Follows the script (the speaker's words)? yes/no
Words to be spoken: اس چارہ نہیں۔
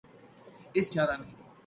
yes